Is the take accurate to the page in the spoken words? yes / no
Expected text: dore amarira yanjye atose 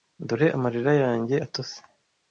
yes